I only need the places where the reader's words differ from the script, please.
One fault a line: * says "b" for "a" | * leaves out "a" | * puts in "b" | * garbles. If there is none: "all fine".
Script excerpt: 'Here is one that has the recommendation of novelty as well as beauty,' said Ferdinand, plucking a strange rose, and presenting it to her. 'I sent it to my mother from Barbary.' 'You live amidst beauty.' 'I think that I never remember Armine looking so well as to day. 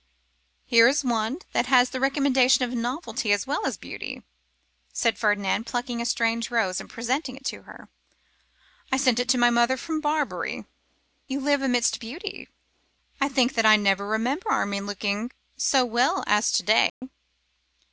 all fine